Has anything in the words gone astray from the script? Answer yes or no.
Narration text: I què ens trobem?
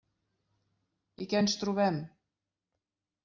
no